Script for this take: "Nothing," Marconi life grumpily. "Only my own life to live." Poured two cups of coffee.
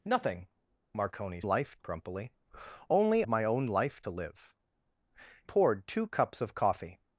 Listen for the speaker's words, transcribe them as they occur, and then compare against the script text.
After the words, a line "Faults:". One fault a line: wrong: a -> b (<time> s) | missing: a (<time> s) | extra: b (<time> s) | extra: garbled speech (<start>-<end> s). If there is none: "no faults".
"Nothing," Marconi life grumpily. "Only my own life to live." Poured two cups of coffee.
Faults:
no faults